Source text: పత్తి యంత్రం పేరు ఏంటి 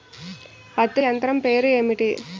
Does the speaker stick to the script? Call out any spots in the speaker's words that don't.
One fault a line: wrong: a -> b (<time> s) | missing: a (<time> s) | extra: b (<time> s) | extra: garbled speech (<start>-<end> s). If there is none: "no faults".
no faults